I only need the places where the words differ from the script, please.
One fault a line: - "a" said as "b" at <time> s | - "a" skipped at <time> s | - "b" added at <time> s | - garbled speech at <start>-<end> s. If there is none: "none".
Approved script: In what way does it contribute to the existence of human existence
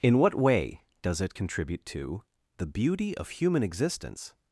- "existence" said as "beauty" at 2.7 s